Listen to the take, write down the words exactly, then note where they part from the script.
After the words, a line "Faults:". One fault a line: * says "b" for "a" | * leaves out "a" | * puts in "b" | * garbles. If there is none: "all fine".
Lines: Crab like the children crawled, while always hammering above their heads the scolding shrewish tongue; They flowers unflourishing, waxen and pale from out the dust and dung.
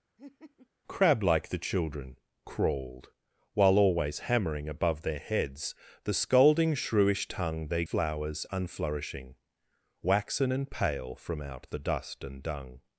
Crab like the children crawled, while always hammering above their heads the scolding shrewish tongue; They flowers unflourishing, waxen and pale from out the dust and dung.
Faults:
all fine